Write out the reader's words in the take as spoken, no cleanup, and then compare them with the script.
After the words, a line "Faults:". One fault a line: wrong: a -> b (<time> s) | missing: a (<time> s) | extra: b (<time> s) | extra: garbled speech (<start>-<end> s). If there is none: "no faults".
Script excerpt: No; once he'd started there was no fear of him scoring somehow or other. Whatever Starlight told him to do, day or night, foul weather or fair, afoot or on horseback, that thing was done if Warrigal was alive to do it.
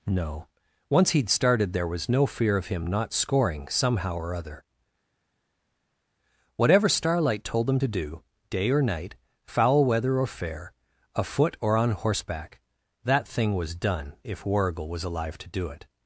No; once he'd started there was no fear of him not scoring somehow or other. Whatever Starlight told him to do, day or night, foul weather or fair, afoot or on horseback, that thing was done if Warrigal was alive to do it.
Faults:
extra: not (2.9 s)